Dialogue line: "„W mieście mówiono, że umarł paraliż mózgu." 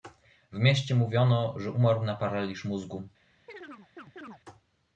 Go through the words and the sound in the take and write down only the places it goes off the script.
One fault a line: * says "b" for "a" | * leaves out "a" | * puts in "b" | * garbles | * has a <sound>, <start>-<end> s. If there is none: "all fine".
* puts in "na"
* has a chirp, 3.5-4.4 s